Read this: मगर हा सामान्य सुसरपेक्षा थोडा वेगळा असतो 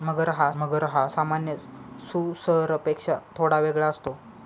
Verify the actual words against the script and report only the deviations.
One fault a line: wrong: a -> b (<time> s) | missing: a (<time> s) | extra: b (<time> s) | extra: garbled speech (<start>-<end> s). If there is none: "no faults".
extra: मगर हा (0.5 s)